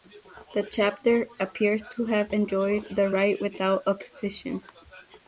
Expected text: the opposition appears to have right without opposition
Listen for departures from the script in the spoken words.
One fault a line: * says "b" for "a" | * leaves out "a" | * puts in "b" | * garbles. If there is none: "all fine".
* says "chapter" for "opposition"
* puts in "enjoyed the"